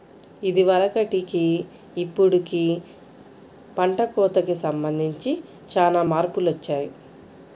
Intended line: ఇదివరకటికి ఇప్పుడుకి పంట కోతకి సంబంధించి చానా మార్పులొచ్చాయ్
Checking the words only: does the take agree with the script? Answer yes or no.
yes